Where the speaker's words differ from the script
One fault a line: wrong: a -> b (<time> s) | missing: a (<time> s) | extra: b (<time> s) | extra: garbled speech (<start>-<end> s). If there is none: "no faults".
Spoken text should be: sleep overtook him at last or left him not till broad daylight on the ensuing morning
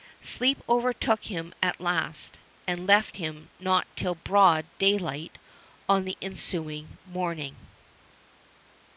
wrong: or -> and (2.6 s)